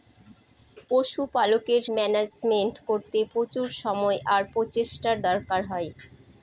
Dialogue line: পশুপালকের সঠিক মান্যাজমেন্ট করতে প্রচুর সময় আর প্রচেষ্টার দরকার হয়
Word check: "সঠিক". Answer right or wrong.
wrong